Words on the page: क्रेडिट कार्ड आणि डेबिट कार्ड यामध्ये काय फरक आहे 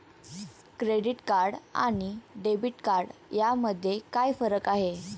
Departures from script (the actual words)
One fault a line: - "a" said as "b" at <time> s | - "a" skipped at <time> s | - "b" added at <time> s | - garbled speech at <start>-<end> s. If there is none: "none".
none